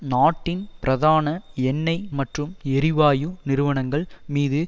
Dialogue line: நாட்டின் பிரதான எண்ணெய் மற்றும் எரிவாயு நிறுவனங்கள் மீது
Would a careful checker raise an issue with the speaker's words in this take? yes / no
no